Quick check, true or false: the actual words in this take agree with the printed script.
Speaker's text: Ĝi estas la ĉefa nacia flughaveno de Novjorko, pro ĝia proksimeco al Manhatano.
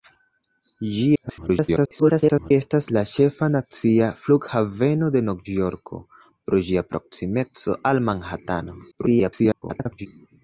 false